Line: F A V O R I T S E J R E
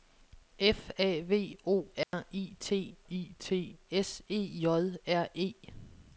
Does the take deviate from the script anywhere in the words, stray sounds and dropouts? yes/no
yes